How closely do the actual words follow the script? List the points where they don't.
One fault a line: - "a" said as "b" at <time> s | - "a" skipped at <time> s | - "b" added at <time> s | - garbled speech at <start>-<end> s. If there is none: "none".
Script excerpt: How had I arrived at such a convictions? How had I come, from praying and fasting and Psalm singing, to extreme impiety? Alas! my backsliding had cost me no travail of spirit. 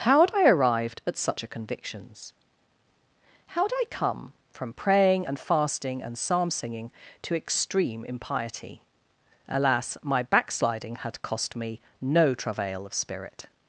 none